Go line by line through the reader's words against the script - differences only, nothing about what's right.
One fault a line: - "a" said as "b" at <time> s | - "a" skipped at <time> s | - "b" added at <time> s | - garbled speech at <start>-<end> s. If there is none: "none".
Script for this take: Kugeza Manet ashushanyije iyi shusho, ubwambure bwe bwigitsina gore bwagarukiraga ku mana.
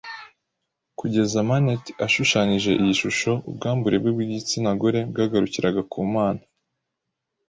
none